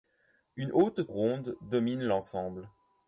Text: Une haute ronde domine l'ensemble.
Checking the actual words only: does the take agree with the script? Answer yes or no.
yes